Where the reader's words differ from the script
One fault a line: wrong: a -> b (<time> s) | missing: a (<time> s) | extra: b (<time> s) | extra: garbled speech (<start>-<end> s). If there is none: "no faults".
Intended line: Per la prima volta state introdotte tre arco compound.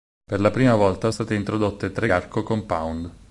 no faults